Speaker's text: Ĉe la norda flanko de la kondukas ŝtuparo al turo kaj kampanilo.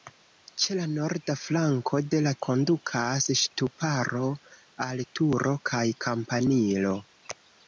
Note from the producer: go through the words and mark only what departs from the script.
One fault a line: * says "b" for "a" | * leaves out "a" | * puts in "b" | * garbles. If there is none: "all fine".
all fine